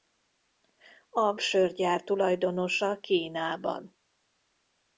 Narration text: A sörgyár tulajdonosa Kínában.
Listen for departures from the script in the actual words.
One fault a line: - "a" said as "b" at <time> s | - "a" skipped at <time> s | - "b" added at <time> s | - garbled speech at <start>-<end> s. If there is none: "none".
none